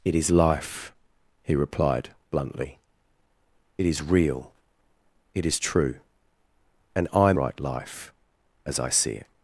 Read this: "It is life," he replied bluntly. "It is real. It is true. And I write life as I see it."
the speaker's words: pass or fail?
pass